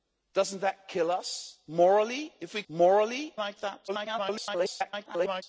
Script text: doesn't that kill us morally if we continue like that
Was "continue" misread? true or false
true